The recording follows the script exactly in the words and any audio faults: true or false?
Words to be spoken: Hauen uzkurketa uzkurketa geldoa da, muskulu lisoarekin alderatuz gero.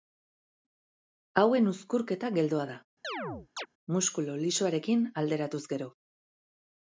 false